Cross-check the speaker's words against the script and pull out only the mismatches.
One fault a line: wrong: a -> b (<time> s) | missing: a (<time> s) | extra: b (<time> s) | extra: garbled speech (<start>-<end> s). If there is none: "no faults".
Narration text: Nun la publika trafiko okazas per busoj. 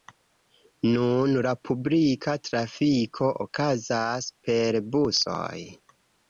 no faults